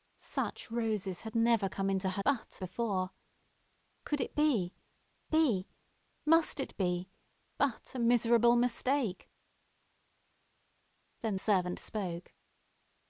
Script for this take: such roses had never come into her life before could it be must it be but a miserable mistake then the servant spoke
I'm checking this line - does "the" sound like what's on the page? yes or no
no